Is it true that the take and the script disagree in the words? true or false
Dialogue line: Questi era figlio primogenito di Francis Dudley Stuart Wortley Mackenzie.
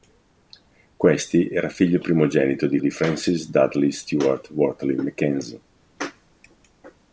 true